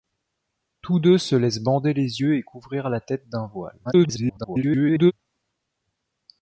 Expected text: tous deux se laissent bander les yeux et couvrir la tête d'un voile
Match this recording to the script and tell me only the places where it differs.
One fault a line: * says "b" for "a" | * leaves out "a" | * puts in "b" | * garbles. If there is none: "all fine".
* garbles